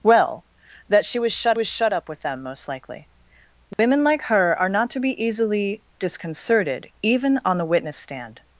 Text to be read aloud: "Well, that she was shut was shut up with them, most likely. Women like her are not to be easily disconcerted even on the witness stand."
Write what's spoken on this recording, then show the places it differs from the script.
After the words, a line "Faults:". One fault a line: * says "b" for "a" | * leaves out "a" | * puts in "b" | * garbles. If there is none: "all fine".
"Well, that she was shut was shut up with them, most likely. Women like her are not to be easily disconcerted even on the witness stand."
Faults:
all fine